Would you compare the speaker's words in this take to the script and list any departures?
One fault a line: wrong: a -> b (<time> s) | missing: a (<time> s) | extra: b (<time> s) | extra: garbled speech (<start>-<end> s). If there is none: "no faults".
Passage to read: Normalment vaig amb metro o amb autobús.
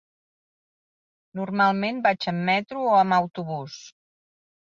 no faults